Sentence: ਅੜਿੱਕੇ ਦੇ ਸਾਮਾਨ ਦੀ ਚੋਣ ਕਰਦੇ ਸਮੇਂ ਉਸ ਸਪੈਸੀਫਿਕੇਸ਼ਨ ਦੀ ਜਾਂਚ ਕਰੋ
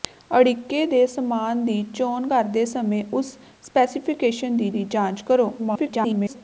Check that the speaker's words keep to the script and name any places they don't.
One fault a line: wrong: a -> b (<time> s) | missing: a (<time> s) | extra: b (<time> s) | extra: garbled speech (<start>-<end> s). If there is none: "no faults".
extra: ਦੀ (4.7 s)
extra: garbled speech (5.6-6.4 s)